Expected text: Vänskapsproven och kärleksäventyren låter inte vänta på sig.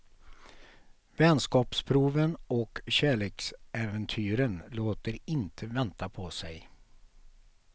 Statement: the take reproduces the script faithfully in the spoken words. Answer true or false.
true